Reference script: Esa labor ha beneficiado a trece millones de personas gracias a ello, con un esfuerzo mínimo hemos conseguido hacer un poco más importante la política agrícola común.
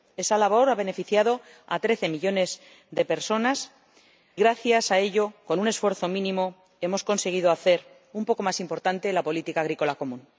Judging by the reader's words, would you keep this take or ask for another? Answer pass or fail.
pass